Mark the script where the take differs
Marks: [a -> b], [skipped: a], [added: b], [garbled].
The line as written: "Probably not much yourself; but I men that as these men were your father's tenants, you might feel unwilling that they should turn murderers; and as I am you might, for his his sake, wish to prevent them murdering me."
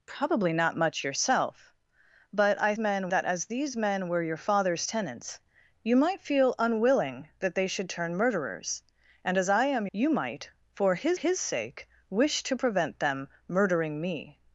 "Probably not much yourself; but I men that as these men were your father's tenants, you might feel unwilling that they should turn murderers; and as I am you might, for his his sake, wish to prevent them murdering me."